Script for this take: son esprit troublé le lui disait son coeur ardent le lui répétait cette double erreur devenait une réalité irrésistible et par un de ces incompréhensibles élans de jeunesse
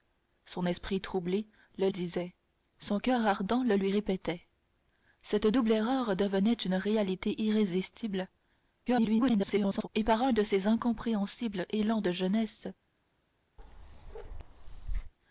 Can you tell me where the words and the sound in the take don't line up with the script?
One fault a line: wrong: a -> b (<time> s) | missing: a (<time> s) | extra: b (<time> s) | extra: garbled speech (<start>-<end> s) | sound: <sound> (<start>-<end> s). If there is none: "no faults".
missing: lui (1.9 s)
extra: garbled speech (8.9-9.9 s)
sound: bark (13.6-15.1 s)